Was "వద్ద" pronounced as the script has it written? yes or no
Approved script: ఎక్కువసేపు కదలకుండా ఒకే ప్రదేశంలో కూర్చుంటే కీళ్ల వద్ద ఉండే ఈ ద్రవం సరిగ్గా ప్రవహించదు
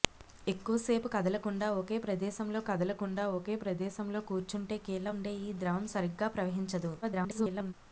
no